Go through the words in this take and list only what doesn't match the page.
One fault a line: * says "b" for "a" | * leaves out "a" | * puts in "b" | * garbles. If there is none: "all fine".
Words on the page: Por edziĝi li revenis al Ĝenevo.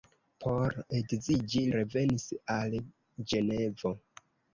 * leaves out "li"